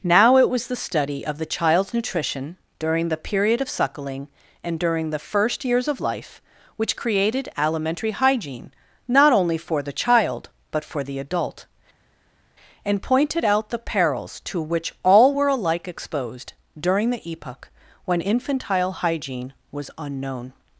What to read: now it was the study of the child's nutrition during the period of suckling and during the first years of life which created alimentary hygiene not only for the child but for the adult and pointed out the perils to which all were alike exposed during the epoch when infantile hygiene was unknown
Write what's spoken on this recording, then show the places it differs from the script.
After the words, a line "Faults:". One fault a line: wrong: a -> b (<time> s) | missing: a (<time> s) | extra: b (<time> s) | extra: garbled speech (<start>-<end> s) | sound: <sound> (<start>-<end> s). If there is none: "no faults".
now it was the study of the child's nutrition during the period of suckling and during the first years of life which created alimentary hygiene not only for the child but for the adult and pointed out the perils to which all were alike exposed during the epoch when infantile hygiene was unknown
Faults:
no faults